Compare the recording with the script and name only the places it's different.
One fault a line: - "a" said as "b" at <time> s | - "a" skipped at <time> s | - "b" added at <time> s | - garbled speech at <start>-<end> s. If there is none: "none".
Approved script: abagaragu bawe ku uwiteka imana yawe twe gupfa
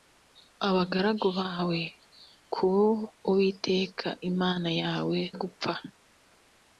- "twe" skipped at 5.2 s